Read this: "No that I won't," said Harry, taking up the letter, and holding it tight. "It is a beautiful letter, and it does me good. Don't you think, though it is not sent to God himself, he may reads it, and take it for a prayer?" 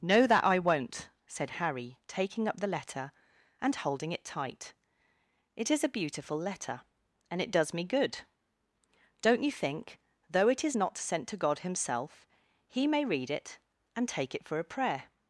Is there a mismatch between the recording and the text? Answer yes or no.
yes